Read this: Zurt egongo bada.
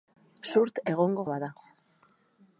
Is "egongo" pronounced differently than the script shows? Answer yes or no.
no